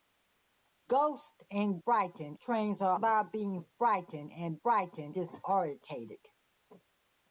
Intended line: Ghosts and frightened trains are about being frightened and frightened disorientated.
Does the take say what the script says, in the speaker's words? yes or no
yes